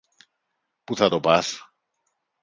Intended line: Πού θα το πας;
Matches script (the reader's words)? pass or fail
pass